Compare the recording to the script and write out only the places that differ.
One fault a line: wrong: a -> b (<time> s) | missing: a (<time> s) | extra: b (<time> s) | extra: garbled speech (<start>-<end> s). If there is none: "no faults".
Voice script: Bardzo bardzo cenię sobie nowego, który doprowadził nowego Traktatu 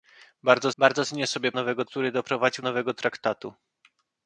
no faults